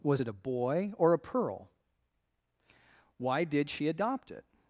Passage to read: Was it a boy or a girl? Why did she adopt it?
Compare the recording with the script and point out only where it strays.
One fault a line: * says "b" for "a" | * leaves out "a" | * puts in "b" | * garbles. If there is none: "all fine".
* says "pearl" for "girl"